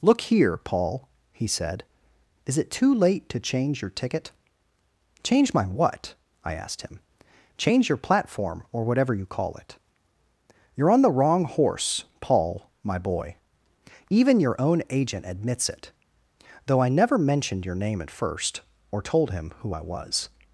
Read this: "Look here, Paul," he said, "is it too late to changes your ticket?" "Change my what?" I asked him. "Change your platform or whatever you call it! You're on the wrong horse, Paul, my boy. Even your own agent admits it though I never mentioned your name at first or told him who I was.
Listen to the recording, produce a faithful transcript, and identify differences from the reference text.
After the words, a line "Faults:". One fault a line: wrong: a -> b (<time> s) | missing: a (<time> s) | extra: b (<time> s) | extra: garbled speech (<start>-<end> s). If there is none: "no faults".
"Look here, Paul," he said, "is it too late to change your ticket?" "Change my what?" I asked him. "Change your platform or whatever you call it! You're on the wrong horse, Paul, my boy. Even your own agent admits it though I never mentioned your name at first or told him who I was.
Faults:
wrong: changes -> change (3.4 s)